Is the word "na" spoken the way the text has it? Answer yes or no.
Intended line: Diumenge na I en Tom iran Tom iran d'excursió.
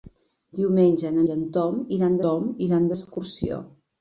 yes